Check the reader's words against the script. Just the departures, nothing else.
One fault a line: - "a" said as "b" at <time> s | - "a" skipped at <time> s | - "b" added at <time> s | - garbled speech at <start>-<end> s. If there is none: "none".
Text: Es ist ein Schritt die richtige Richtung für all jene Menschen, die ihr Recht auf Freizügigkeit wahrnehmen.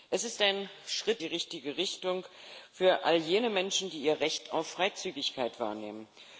none